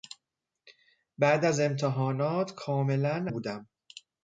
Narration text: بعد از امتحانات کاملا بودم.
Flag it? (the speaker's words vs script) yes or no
no